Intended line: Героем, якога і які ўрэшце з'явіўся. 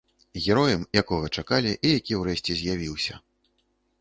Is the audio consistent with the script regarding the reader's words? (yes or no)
no